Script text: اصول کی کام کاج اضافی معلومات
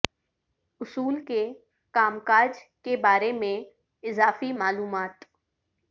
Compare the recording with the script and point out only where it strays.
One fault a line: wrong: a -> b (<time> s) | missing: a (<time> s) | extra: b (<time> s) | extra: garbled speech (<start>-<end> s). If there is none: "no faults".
wrong: کی -> کے (1.3 s)
extra: کے بارے میں (2.8 s)